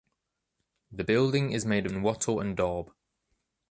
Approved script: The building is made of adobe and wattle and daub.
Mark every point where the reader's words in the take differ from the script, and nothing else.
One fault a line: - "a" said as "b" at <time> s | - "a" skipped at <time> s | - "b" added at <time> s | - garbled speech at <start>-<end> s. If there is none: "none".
- "adobe" skipped at 1.9 s